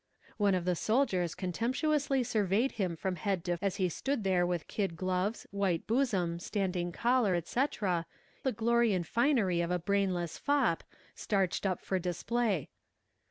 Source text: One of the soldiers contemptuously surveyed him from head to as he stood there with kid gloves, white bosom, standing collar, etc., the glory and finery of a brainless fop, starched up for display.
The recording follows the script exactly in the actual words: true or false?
true